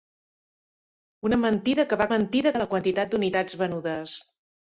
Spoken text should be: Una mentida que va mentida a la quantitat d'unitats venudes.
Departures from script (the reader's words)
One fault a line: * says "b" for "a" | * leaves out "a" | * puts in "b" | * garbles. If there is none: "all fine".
all fine